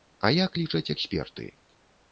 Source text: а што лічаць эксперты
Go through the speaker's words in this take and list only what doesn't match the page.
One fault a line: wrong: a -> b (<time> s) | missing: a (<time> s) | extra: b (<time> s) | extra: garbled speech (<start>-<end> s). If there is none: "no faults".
wrong: што -> як (0.4 s)